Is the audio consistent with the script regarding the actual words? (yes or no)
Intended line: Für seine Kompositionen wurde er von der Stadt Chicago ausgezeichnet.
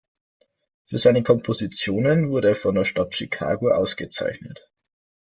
yes